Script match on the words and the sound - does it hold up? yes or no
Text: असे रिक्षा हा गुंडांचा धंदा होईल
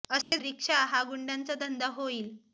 no